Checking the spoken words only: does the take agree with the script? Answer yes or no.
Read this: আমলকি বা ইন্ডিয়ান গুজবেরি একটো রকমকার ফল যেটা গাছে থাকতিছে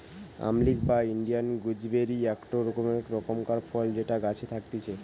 yes